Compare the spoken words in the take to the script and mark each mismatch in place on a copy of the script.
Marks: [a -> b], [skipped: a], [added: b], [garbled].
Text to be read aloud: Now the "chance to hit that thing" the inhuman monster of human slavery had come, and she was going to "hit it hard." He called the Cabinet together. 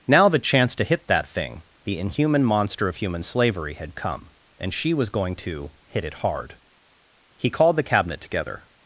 Now the "chance to hit that thing" the inhuman monster of human slavery had come, and she was going to "hit it hard." He called the Cabinet together.